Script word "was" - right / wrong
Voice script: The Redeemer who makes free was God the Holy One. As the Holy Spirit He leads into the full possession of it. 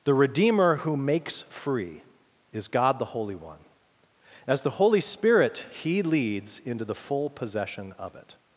wrong